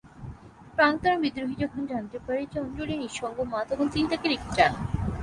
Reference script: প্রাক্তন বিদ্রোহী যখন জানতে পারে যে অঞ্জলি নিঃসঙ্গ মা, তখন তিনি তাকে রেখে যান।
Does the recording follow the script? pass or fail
pass